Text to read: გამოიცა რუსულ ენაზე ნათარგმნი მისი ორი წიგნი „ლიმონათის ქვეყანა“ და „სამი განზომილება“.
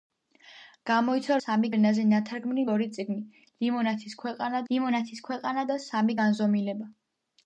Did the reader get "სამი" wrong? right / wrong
right